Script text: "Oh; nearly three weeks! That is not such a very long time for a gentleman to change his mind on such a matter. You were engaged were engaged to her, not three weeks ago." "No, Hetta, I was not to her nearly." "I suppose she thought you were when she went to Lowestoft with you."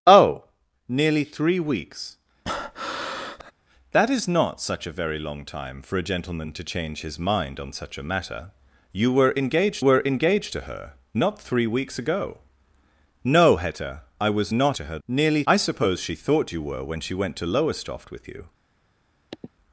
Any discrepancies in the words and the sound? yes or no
yes